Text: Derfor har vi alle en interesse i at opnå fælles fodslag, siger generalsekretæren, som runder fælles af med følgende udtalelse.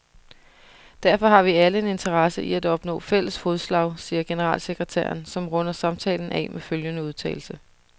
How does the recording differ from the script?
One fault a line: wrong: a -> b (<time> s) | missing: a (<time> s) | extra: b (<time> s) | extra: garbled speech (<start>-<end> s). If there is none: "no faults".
wrong: fælles -> samtalen (5.7 s)